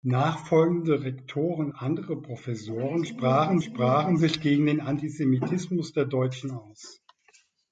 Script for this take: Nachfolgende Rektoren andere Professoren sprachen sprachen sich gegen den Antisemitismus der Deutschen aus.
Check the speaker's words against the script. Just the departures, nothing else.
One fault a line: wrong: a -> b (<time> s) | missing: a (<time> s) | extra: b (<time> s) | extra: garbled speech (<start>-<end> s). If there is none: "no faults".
no faults